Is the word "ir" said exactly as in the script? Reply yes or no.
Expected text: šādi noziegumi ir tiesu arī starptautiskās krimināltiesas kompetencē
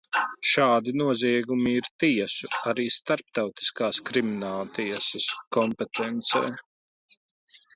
yes